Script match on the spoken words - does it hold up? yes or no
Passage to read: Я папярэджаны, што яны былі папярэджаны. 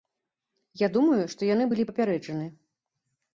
no